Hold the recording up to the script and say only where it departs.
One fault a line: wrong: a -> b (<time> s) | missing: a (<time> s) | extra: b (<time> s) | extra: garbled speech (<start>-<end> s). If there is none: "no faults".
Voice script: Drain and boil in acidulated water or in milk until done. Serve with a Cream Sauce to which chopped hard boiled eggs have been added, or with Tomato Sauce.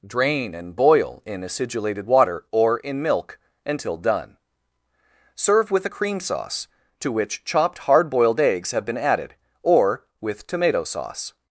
no faults